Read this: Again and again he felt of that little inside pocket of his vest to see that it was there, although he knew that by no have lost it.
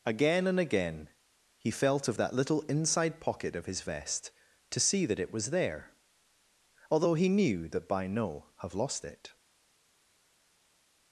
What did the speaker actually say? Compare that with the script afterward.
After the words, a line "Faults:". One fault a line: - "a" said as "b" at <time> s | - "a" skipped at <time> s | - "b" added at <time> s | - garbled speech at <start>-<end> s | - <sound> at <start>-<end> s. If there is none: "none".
Again and again he felt of that little inside pocket of his vest to see that it was there, although he knew that by no have lost it.
Faults:
none